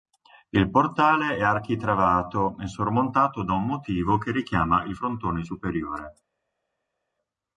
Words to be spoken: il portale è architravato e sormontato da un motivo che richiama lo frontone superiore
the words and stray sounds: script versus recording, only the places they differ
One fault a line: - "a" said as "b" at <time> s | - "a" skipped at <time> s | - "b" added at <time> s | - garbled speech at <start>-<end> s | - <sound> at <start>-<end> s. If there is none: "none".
- "lo" said as "il" at 4.8 s